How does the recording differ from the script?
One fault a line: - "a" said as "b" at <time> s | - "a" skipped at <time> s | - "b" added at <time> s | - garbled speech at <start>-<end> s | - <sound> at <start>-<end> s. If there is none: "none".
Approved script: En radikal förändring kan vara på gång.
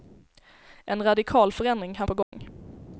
- "vara" skipped at 2.1 s
- dropout at 2.2-2.3 s